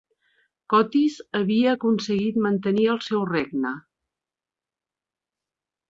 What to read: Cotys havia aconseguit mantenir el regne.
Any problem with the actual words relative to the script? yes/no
yes